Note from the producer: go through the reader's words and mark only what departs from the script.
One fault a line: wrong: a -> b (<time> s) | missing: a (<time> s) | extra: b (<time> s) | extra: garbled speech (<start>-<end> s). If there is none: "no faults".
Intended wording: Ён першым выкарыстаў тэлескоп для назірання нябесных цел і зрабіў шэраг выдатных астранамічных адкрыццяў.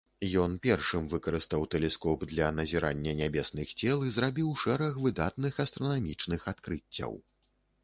no faults